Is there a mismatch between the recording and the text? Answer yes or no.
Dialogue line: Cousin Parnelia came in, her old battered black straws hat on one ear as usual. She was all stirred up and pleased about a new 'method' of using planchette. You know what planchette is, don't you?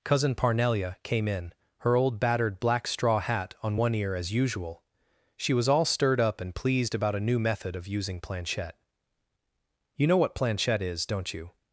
yes